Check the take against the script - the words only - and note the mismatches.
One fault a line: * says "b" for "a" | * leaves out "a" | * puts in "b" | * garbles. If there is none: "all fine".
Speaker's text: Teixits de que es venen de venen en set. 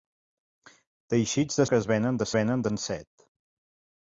all fine